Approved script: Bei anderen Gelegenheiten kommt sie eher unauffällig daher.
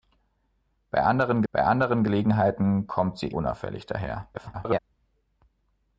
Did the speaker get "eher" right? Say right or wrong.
wrong